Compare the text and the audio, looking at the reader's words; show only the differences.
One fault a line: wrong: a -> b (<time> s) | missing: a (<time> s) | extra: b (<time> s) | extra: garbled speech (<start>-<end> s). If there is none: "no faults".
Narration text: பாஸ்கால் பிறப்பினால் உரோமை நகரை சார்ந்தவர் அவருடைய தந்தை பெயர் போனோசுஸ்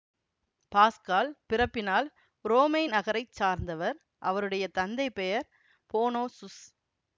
no faults